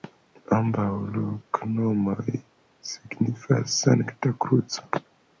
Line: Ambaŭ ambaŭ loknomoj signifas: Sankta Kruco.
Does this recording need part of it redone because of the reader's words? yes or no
yes